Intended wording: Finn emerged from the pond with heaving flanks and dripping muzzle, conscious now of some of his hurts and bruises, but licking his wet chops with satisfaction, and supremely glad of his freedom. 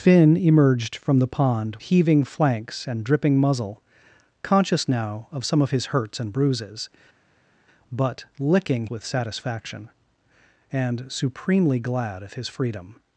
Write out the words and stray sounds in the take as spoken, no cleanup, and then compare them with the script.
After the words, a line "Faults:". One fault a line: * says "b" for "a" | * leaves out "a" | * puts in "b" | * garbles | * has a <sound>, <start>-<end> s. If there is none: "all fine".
Finn emerged from the pond heaving flanks and dripping muzzle, conscious now of some of his hurts and bruises, but licking with satisfaction, and supremely glad of his freedom.
Faults:
* leaves out "with"
* leaves out "his wet chops"